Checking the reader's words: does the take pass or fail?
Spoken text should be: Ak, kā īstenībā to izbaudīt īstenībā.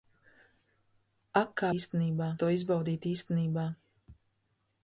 pass